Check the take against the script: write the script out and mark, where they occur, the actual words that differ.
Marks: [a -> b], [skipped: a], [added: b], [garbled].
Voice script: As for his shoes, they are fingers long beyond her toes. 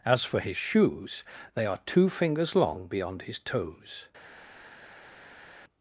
As for his shoes, they are [added: two] fingers long beyond [her -> his] toes.